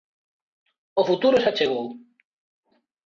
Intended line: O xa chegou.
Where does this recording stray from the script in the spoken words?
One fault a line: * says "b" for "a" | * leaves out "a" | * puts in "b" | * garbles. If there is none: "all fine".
* puts in "futuro"